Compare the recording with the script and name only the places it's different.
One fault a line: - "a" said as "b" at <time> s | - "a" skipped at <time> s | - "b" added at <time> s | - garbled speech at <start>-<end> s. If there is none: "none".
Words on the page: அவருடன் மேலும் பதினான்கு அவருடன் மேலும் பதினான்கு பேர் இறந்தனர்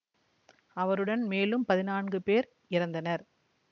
- "அவருடன் மேலும் பதினான்கு" skipped at 2.2 s